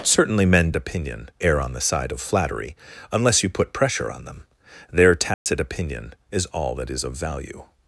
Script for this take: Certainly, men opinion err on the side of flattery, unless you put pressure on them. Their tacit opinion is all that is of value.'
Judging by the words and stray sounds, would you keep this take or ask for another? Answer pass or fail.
fail